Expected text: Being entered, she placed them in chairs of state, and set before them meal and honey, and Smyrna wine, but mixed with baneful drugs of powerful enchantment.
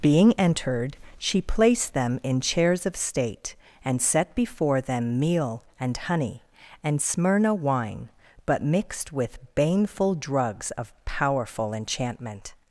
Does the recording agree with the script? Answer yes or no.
yes